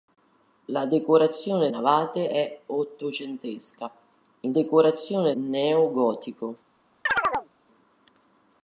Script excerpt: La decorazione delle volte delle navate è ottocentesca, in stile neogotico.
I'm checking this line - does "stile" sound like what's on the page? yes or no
no